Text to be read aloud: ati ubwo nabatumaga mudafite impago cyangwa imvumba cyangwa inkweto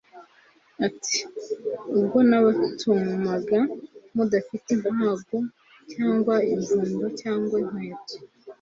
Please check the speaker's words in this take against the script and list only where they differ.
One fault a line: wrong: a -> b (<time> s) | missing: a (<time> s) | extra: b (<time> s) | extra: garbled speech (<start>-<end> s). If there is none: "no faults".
no faults